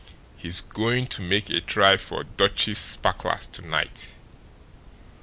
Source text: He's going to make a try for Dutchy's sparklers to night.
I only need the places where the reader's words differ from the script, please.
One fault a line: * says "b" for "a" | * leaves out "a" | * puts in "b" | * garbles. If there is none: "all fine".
all fine